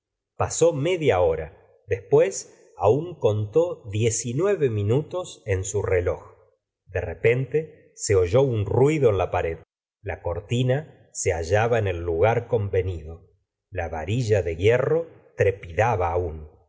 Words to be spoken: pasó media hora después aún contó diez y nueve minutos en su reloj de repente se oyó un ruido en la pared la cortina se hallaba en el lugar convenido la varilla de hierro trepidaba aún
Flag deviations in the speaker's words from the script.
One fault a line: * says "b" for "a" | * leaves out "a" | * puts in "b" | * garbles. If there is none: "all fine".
all fine